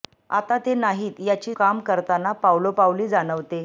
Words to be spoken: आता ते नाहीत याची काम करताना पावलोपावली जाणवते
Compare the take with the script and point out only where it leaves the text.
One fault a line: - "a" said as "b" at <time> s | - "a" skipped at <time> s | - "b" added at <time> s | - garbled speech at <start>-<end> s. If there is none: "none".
none